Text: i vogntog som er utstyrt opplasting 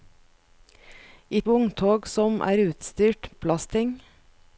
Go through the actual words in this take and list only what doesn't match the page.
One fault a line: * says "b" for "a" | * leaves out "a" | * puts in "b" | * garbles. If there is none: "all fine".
all fine